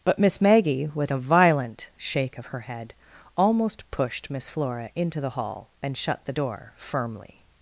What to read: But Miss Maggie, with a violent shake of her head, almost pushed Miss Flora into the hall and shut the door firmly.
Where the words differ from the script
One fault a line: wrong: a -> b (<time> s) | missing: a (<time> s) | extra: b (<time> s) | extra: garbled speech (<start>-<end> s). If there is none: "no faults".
no faults